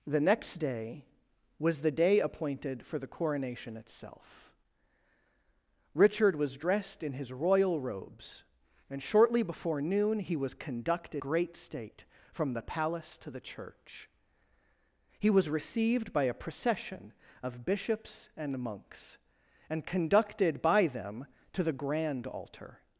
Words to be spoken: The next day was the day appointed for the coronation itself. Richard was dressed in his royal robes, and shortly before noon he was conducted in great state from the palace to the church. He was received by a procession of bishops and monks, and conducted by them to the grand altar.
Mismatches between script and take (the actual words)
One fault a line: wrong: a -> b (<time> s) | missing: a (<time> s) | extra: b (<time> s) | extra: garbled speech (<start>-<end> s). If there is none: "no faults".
missing: in (11.2 s)